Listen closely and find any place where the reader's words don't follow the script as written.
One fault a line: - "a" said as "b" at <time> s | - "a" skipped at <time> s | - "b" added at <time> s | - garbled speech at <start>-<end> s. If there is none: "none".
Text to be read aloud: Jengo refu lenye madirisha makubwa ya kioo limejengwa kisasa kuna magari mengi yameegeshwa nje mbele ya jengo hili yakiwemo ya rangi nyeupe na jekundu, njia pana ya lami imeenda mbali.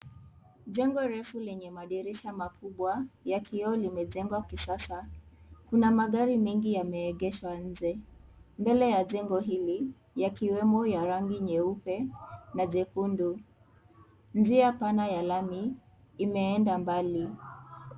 none